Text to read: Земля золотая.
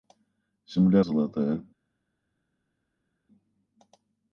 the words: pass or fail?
pass